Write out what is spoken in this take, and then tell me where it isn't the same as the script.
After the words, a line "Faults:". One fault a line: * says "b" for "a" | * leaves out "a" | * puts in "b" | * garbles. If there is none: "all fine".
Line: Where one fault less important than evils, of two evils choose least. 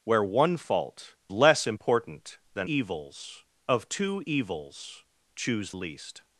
Where one fault less important than evils, of two evils choose least.
Faults:
all fine